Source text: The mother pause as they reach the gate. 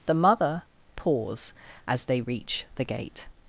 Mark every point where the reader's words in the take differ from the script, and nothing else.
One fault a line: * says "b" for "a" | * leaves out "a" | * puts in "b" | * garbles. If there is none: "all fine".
all fine